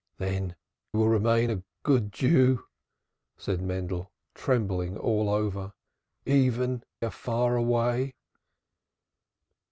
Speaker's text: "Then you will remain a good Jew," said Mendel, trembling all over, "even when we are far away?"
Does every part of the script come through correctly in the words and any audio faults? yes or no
no